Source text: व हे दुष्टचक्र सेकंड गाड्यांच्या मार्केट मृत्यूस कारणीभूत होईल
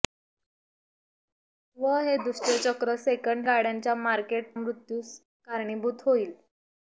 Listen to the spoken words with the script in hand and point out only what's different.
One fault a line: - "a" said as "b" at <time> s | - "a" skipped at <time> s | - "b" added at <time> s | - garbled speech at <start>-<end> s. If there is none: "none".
none